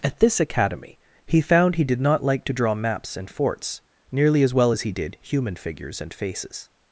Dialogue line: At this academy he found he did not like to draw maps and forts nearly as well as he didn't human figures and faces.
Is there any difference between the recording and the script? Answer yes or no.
yes